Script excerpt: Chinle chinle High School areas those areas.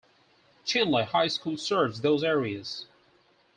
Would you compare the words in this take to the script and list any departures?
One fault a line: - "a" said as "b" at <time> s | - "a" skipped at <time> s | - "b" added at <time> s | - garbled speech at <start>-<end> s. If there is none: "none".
- "chinle" skipped at 1.1 s
- "areas" said as "serves" at 1.6 s